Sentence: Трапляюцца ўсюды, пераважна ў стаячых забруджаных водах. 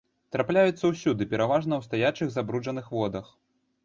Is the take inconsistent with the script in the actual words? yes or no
no